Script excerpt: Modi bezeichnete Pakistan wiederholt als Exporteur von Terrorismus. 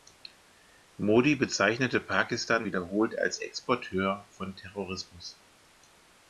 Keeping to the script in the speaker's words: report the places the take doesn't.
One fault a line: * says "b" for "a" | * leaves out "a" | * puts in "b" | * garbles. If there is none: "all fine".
all fine